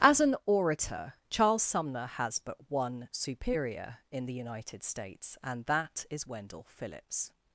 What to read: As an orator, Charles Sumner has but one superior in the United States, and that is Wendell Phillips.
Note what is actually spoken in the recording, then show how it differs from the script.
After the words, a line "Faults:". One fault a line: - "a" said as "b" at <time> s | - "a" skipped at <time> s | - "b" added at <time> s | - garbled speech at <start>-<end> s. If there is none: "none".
As an orator, Charles Sumner has but one superior in the United States, and that is Wendell Phillips.
Faults:
none